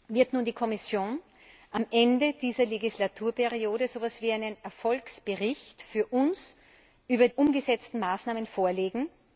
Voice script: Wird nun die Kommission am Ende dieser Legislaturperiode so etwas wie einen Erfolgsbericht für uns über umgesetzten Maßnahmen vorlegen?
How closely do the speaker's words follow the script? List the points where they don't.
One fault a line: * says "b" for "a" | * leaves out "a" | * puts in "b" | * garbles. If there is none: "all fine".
all fine